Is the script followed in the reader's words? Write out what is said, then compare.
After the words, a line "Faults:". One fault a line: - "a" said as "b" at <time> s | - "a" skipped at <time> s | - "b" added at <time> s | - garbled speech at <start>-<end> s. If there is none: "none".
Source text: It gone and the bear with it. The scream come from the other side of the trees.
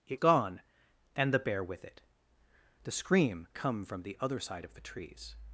It gone and the bear with it. The scream come from the other side of the trees.
Faults:
none